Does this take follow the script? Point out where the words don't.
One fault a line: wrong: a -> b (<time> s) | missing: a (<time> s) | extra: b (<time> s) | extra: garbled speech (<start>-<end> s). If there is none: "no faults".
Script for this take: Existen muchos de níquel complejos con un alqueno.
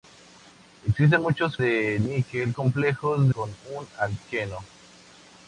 no faults